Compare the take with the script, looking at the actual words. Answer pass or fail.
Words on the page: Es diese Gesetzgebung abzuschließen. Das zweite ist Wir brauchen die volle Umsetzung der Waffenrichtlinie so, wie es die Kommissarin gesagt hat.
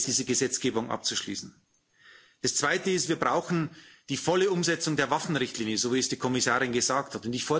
pass